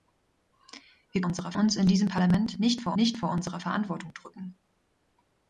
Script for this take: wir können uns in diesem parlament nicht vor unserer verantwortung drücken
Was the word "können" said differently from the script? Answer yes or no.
yes